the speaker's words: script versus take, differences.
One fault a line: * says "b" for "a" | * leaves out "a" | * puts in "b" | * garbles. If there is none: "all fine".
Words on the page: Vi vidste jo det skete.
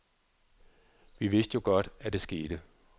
* puts in "godt at"